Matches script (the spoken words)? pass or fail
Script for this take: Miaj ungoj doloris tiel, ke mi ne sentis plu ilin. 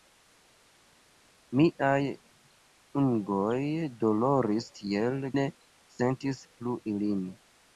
fail